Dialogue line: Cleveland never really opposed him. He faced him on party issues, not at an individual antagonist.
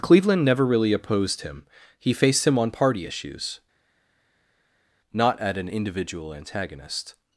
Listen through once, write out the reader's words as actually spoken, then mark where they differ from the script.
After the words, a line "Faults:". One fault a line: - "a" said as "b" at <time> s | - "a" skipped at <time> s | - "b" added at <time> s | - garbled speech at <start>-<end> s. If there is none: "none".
Cleveland never really opposed him. He faced him on party issues, not at an individual antagonist.
Faults:
none